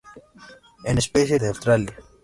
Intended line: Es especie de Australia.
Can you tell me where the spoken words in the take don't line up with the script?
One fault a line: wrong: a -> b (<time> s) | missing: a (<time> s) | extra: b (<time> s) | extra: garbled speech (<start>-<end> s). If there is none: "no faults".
no faults